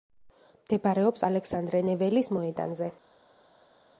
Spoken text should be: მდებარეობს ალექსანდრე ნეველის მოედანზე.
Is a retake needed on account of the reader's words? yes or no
no